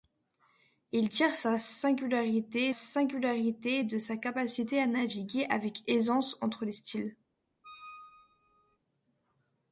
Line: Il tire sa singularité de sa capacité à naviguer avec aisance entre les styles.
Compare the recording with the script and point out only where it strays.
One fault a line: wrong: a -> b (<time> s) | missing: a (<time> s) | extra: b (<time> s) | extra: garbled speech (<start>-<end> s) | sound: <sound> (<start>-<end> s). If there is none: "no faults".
extra: singularité (2.7 s)
sound: squeak (7.6-8.8 s)